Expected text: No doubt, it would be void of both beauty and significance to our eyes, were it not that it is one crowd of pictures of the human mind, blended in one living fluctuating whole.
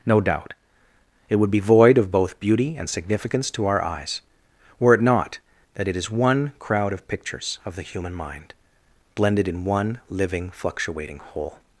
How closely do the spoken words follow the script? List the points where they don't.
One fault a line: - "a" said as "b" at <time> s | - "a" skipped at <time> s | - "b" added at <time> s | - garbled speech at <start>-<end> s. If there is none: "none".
none